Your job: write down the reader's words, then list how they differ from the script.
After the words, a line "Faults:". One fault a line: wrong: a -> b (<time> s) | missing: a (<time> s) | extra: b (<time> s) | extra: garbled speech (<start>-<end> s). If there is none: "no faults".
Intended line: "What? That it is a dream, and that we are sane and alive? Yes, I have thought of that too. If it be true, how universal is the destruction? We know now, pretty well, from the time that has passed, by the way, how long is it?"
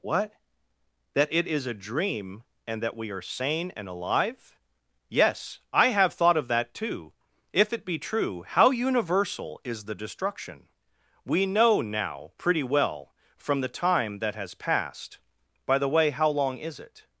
"What? That it is a dream, and that we are sane and alive? Yes, I have thought of that too. If it be true, how universal is the destruction? We know now, pretty well, from the time that has passed, by the way, how long is it?"
Faults:
no faults